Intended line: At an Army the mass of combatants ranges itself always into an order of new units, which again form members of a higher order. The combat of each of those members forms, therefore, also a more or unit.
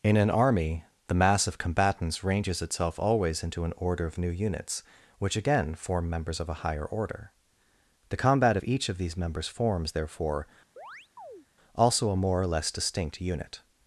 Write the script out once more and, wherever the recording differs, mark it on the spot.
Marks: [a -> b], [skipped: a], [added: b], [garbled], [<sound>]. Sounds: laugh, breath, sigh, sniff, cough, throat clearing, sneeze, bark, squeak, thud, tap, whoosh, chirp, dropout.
[At -> In] an Army the mass of combatants ranges itself always into an order of new units, which again form members of a higher order. The combat of each of [those -> these] members forms, therefore, [chirp] also a more or [added: less distinct] unit.